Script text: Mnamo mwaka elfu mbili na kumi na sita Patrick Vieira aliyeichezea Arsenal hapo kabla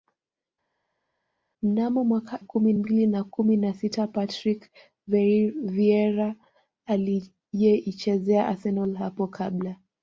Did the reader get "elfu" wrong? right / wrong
wrong